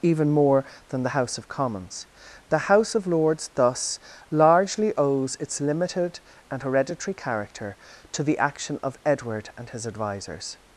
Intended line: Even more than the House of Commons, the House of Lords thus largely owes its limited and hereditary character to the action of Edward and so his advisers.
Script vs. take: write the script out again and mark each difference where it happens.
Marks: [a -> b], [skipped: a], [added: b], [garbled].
Even more than the House of Commons, the House of Lords thus largely owes its limited and hereditary character to the action of Edward and [skipped: so] his advisers.